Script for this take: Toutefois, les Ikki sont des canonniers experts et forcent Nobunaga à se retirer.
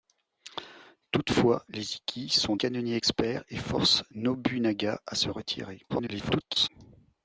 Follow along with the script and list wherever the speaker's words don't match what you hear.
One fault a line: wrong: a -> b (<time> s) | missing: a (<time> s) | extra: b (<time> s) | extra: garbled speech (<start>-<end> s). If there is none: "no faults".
missing: des (2.5 s)
extra: garbled speech (5.9-6.7 s)